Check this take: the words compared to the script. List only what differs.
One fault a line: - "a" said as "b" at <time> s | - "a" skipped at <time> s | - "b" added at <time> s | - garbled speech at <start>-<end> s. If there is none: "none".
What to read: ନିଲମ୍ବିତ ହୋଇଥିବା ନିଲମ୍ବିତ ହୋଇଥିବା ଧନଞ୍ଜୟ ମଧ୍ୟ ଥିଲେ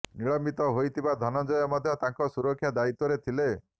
- "ନିଲମ୍ବିତ ହୋଇଥିବା ଧନଞ୍ଜୟ ମଧ୍ୟ" said as "ଧନଞ୍ଜୟ ମଧ୍ୟ ତାଙ୍କ ସୁରକ୍ଷା ଦାୟିତ୍ୱରେ" at 1.2 s